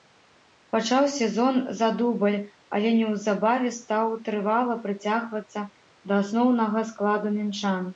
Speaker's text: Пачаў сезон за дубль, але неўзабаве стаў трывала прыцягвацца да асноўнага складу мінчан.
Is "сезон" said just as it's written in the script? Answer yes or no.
yes